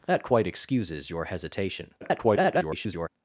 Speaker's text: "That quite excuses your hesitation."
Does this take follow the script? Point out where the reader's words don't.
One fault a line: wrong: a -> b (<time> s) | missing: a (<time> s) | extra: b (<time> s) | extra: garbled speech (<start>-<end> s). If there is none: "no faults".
extra: garbled speech (2.0-3.1 s)